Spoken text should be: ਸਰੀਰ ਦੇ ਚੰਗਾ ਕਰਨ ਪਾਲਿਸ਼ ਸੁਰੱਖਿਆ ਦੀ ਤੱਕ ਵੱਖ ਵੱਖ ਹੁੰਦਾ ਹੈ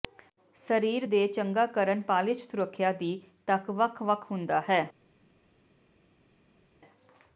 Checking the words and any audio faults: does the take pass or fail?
pass